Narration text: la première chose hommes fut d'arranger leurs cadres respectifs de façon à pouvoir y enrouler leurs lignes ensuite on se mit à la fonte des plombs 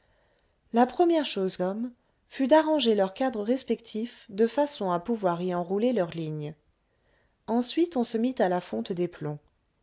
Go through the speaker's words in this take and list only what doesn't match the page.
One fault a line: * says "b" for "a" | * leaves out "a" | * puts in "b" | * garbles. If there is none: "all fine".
all fine